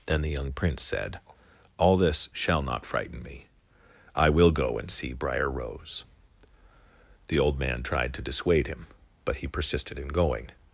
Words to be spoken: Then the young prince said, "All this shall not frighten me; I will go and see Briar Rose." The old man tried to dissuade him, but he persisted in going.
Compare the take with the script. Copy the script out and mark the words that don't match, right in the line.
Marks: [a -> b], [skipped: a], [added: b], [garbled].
Then the young prince said, "All this shall not frighten me; I will go and see Briar Rose." The old man tried to dissuade him, but he persisted in going.